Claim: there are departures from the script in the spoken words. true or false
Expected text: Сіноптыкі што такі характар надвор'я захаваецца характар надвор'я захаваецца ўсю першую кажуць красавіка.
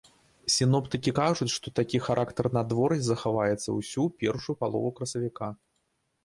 true